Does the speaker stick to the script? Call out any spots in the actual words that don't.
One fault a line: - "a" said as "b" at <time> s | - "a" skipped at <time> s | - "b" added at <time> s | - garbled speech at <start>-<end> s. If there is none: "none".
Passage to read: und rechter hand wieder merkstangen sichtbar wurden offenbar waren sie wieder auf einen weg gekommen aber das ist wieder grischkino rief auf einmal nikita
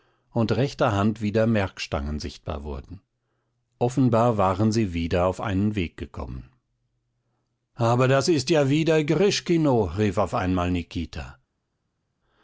- "ja" added at 8.5 s